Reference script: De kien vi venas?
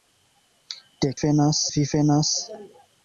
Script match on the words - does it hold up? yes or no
no